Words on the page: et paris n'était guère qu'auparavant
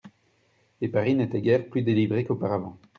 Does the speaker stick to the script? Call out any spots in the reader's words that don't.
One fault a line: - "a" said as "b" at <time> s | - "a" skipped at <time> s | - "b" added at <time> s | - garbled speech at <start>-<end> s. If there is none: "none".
- "plus délivré" added at 1.7 s